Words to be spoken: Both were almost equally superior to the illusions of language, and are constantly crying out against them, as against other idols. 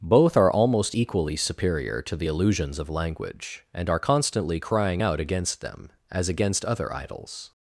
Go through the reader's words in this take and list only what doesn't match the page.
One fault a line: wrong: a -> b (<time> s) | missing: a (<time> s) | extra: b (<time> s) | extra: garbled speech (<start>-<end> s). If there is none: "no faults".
wrong: were -> are (0.3 s)